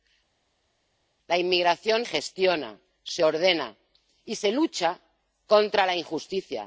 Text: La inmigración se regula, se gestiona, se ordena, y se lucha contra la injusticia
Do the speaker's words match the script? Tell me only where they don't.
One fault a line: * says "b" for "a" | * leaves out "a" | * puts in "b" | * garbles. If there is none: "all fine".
* leaves out "se regula se"